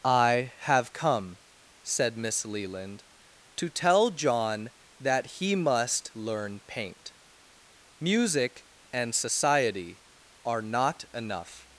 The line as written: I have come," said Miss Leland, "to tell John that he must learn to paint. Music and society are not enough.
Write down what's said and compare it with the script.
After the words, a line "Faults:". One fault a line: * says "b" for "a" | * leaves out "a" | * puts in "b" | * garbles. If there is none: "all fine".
I have come," said Miss Leland, "to tell John that he must learn paint. Music and society are not enough.
Faults:
* leaves out "to"